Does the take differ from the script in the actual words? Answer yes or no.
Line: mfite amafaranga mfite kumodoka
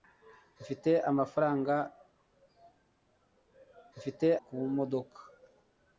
no